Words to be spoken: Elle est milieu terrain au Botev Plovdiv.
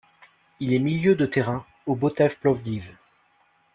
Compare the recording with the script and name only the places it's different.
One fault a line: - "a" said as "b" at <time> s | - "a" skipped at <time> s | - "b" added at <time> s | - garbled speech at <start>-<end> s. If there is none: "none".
- "Elle" said as "Il" at 0.6 s
- "de" added at 1.1 s